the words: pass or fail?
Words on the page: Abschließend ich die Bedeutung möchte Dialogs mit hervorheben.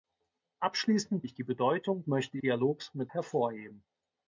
pass